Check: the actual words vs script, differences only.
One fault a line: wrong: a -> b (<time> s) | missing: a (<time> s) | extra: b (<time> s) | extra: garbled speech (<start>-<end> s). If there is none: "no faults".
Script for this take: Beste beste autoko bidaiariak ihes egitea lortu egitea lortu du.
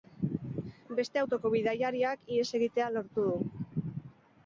missing: beste (1.2 s)
missing: egitea lortu (3.3 s)